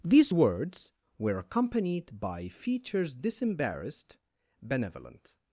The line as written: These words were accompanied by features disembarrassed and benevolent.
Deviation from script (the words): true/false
true